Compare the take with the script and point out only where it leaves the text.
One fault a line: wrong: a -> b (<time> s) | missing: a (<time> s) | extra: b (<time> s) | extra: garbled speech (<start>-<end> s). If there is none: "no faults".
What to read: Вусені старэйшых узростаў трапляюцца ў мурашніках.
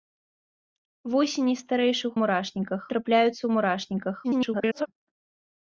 wrong: узростаў -> мурашніках (2.2 s)
extra: garbled speech (4.2-4.9 s)